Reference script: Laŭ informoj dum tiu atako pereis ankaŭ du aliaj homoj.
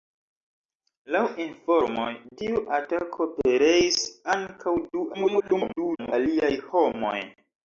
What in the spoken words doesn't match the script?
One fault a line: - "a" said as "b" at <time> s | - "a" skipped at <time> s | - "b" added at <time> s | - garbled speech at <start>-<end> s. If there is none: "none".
- "dum" skipped at 2.1 s
- garbled speech at 5.1-6.1 s